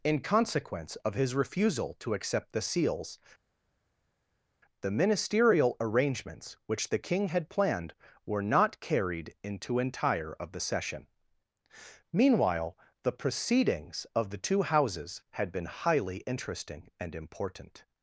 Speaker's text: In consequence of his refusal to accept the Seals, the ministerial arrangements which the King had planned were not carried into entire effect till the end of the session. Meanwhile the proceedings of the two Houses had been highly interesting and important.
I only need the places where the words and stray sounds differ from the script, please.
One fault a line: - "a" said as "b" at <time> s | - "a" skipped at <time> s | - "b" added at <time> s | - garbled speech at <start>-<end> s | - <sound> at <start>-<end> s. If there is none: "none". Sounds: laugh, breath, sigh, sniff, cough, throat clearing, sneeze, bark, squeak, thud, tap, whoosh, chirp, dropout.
- "effect till the end" skipped at 10.3 s